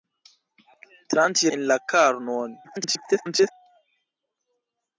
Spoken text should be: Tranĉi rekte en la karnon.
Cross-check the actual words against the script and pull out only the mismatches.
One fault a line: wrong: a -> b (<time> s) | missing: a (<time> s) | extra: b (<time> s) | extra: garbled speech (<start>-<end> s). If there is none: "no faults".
missing: rekte (1.5 s)
extra: garbled speech (2.6-3.5 s)